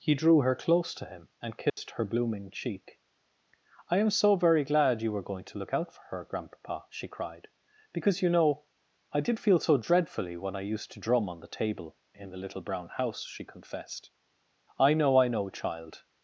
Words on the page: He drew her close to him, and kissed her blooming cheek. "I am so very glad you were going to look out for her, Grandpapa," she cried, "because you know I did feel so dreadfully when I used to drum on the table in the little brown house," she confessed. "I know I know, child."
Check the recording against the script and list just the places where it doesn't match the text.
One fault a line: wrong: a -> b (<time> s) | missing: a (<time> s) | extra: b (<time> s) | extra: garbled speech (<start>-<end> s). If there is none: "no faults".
no faults